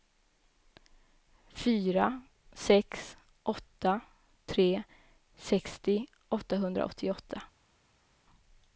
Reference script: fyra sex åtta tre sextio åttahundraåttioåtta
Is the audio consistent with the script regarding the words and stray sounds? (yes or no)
yes